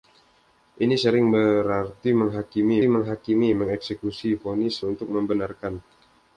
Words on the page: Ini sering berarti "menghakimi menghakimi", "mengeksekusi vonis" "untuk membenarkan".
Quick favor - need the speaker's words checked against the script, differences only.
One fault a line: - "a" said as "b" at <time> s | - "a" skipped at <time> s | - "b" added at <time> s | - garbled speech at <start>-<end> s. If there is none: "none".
none